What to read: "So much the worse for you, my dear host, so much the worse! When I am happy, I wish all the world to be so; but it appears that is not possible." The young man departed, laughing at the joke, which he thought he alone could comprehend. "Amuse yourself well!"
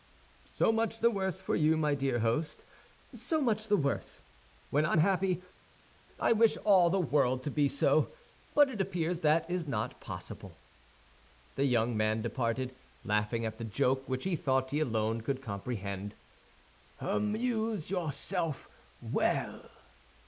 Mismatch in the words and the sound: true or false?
true